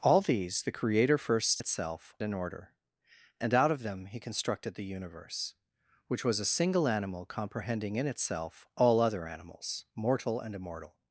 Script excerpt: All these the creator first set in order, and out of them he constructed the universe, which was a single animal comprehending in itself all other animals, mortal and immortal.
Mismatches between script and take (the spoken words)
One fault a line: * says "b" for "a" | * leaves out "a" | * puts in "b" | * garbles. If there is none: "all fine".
* says "itself" for "set"